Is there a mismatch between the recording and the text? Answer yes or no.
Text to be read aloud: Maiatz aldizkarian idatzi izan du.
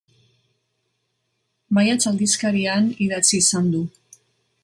no